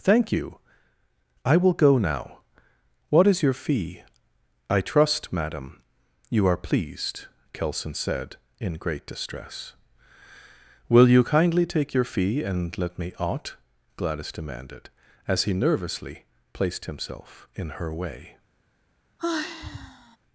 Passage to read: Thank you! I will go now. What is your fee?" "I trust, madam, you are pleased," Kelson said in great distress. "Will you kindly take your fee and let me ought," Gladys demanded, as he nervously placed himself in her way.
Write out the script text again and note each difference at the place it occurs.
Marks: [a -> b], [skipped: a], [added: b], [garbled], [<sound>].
Thank you! I will go now. What is your fee?" "I trust, madam, you are pleased," Kelson said in great distress. "Will you kindly take your fee and let me ought," Gladys demanded, as he nervously placed himself in her way. [sigh]